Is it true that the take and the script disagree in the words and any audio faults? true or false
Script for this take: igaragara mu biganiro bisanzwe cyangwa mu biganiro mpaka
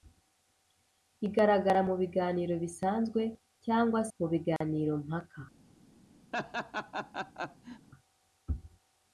true